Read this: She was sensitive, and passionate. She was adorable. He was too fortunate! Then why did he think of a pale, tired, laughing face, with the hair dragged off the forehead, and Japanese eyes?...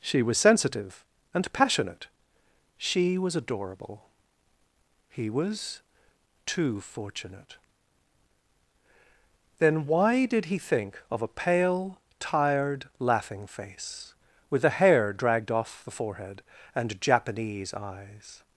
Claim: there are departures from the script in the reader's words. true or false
false